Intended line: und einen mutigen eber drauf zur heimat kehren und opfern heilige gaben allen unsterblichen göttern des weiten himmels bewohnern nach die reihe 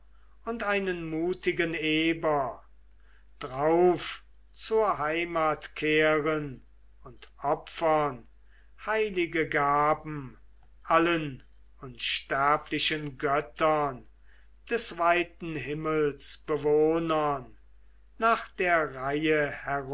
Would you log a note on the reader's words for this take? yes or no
yes